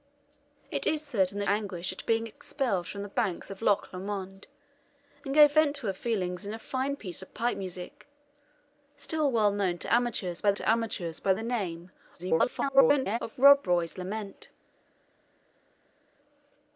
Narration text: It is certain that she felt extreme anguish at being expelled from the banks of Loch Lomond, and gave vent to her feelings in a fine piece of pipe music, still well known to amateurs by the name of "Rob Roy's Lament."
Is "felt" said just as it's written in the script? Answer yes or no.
no